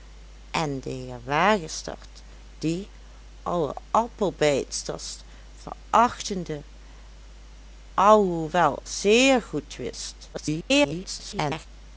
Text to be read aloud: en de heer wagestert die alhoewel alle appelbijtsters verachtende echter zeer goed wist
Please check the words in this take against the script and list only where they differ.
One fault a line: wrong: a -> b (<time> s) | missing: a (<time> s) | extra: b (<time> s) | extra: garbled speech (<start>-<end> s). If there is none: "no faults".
missing: alhoewel (2.9 s)
wrong: echter -> alhoewel (7.9 s)
extra: garbled speech (10.3-11.7 s)